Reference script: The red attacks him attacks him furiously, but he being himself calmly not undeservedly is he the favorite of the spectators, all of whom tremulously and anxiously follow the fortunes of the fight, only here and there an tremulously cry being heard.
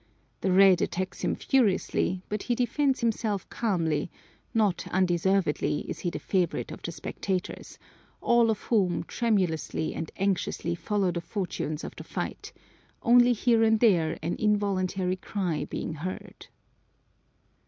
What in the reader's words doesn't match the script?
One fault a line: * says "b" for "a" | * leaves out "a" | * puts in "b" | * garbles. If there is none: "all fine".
* leaves out "attacks him"
* says "defends" for "being"
* says "involuntary" for "tremulously"